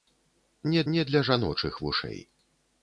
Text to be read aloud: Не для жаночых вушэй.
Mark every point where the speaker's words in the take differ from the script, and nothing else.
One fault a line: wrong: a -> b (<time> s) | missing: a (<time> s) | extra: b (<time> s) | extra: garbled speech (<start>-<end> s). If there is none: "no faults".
extra: не (0.9 s)